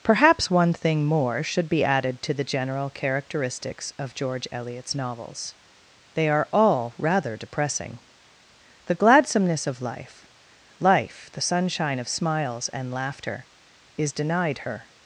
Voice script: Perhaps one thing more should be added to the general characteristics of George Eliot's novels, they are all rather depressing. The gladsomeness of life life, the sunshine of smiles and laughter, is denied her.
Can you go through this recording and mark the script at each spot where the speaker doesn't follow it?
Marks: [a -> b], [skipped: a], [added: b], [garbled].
Perhaps one thing more should be added to the general characteristics of George Eliot's novels, they are all rather depressing. The gladsomeness of life life, the sunshine of smiles and laughter, is denied her.